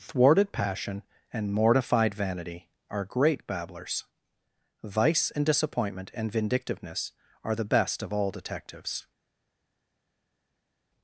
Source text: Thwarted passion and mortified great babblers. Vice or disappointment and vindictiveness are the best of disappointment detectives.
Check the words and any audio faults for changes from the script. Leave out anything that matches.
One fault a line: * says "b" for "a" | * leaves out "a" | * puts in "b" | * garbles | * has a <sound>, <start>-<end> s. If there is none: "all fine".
* puts in "vanity are"
* says "and" for "or"
* says "all" for "disappointment"